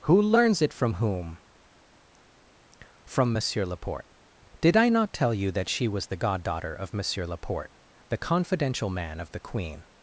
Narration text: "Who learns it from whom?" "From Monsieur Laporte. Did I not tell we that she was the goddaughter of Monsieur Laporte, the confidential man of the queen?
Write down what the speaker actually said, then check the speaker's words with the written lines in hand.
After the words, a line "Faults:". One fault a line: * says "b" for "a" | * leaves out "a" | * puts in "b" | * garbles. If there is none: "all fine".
"Who learns it from whom?" "From Monsieur Laporte. Did I not tell you that she was the goddaughter of Monsieur Laporte, the confidential man of the queen?
Faults:
* says "you" for "we"